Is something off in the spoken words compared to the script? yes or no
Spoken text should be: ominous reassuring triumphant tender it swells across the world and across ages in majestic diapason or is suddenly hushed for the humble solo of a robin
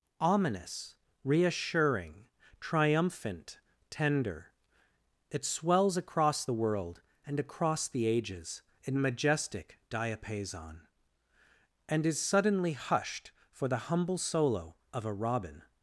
yes